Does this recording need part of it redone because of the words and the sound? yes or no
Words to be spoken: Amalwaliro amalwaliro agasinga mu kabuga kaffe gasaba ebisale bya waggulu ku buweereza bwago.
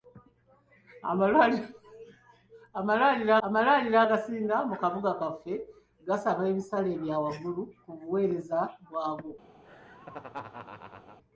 yes